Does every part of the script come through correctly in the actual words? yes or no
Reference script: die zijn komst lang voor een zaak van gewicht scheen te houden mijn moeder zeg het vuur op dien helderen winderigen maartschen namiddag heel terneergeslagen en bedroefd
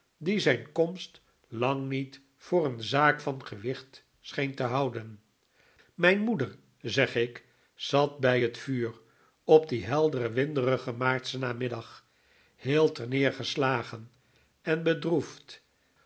no